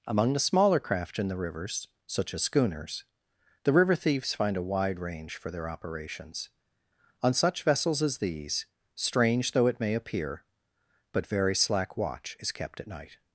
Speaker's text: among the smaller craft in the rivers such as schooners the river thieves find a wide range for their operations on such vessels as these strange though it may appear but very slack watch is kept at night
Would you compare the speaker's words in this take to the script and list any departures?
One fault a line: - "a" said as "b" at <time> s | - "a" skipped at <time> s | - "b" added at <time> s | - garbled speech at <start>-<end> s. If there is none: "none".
none